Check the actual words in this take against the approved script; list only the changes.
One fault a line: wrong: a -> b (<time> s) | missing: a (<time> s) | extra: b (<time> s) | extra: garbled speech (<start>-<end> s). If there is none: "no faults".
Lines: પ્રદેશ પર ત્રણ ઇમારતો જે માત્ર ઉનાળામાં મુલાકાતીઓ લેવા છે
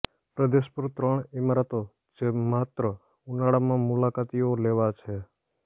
no faults